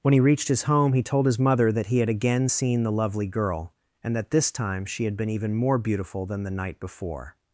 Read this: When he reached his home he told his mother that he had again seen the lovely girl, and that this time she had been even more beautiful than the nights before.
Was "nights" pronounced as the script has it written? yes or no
no